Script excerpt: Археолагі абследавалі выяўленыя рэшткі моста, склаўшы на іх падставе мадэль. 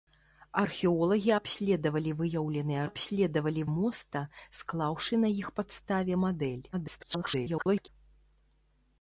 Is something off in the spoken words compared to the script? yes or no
yes